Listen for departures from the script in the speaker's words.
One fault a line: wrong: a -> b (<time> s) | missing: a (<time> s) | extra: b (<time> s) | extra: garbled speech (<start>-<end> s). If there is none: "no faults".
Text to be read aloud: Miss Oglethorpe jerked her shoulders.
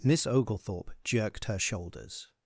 no faults